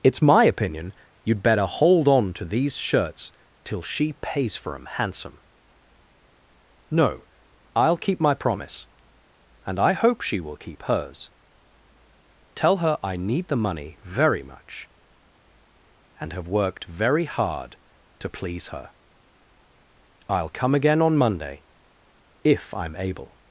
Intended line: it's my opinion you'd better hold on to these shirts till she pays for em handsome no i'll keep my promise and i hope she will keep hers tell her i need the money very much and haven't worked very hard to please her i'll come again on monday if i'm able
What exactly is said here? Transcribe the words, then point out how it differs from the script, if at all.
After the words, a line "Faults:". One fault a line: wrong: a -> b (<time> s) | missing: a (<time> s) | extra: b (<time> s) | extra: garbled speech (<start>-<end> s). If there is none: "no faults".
it's my opinion you'd better hold on to these shirts till she pays for em handsome no i'll keep my promise and i hope she will keep hers tell her i need the money very much and have worked very hard to please her i'll come again on monday if i'm able
Faults:
wrong: haven't -> have (16.3 s)